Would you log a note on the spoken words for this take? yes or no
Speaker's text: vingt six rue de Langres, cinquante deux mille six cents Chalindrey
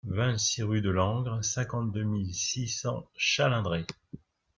no